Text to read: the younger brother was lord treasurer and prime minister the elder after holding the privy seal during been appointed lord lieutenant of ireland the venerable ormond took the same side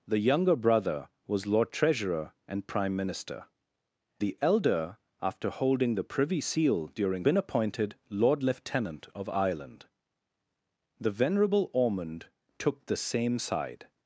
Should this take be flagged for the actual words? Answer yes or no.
no